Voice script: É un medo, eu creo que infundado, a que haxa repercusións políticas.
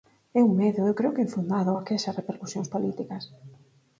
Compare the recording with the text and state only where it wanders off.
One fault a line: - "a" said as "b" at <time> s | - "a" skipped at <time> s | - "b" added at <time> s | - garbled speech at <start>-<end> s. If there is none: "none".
none